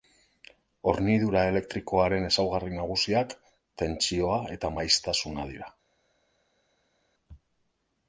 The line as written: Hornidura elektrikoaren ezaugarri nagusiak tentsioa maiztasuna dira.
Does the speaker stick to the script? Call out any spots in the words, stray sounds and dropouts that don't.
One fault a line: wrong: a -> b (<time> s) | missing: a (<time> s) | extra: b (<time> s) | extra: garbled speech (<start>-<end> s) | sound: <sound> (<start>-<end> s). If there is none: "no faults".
extra: eta (4.6 s)